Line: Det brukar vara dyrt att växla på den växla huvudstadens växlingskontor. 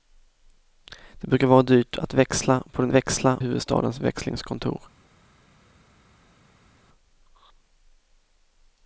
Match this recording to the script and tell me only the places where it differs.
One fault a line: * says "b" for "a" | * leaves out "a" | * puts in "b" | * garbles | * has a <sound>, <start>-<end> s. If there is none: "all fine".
all fine